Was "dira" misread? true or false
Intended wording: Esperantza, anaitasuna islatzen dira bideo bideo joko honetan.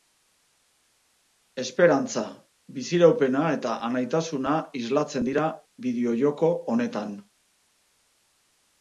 false